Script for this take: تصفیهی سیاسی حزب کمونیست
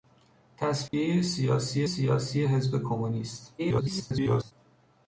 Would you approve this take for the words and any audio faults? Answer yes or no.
no